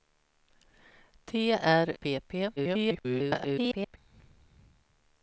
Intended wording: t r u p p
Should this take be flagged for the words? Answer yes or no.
yes